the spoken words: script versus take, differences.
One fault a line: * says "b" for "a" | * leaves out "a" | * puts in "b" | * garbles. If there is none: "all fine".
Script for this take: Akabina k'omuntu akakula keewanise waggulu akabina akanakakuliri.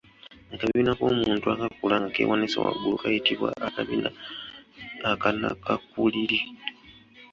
* puts in "nga"
* puts in "kayitibwa"